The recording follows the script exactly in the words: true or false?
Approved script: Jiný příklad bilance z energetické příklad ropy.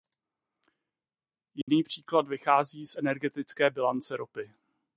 false